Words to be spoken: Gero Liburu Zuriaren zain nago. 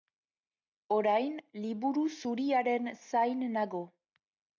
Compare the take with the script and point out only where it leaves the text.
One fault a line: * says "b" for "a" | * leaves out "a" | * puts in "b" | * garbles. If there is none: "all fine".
* says "Orain" for "Gero"